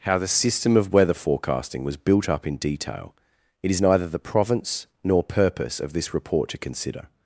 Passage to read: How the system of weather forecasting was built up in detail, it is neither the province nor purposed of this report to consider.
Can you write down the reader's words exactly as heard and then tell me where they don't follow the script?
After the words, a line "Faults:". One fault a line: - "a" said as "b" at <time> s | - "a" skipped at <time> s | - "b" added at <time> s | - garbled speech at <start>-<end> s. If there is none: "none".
How the system of weather forecasting was built up in detail, it is neither the province nor purpose of this report to consider.
Faults:
- "purposed" said as "purpose" at 5.2 s